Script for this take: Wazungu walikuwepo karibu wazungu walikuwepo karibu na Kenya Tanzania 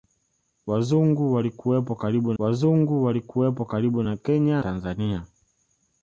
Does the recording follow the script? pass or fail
pass